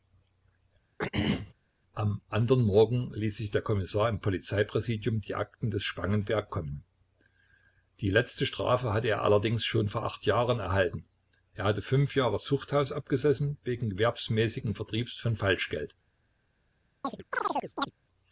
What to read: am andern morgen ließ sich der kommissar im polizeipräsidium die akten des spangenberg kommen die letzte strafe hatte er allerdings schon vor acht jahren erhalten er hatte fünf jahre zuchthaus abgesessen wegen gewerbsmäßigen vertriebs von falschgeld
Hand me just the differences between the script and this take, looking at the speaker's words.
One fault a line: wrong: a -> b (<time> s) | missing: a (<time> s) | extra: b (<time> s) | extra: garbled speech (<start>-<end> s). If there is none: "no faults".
no faults